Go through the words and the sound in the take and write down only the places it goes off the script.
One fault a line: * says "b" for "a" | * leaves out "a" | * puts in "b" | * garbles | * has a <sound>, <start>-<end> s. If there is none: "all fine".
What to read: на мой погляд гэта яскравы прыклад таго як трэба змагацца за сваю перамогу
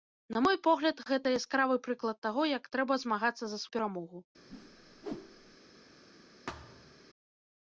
* leaves out "сваю"
* has a whoosh, 4.5-5.6 s
* has a thud, 6.5-7.0 s